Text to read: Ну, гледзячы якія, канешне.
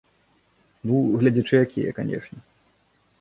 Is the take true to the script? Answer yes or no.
yes